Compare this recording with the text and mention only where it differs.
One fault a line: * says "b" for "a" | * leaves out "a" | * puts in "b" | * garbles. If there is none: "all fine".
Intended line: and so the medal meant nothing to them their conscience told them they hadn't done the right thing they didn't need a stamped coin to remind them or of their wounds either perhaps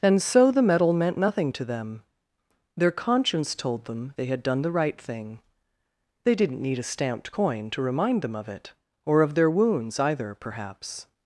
* says "had" for "hadn't"
* puts in "of it"